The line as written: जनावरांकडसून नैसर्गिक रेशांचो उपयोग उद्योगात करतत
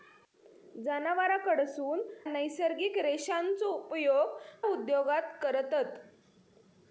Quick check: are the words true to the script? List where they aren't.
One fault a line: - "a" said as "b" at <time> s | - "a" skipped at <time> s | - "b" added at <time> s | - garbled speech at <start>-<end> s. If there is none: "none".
none